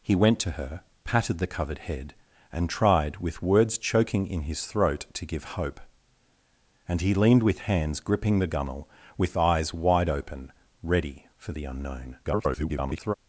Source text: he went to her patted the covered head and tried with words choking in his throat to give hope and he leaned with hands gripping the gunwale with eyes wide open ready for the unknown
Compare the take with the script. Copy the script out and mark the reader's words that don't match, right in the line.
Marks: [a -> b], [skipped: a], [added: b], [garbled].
he went to her patted the covered head and tried with words choking in his throat to give hope and he leaned with hands gripping the gunwale with eyes wide open ready for the unknown [garbled]